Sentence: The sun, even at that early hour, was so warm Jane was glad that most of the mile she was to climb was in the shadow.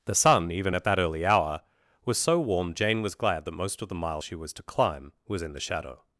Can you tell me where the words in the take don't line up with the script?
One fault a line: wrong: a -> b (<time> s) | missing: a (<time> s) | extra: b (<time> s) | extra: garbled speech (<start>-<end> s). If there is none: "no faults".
no faults